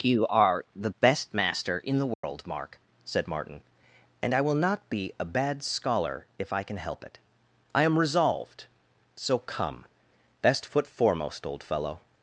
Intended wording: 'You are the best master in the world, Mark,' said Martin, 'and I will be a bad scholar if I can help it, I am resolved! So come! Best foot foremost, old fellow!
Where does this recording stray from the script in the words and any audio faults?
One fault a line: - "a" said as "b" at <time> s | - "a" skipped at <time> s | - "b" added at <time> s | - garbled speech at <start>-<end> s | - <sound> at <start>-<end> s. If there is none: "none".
- dropout at 2.1-2.2 s
- "not" added at 4.5 s